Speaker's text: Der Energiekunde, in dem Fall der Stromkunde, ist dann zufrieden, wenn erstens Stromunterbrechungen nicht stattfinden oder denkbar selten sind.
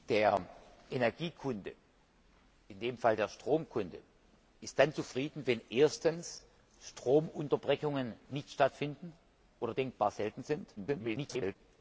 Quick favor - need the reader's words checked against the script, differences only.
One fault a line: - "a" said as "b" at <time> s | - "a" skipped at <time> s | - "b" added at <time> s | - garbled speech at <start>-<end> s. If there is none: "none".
- garbled speech at 10.8-11.6 s